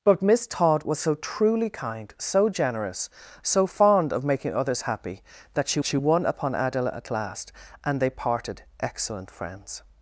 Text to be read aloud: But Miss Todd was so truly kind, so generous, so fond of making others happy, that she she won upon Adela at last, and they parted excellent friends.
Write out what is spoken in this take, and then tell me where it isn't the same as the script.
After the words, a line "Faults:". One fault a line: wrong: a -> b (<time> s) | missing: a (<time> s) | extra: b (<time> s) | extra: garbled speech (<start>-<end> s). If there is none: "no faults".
But Miss Todd was so truly kind, so generous, so fond of making others happy, that she she won upon Adela at last, and they parted excellent friends.
Faults:
no faults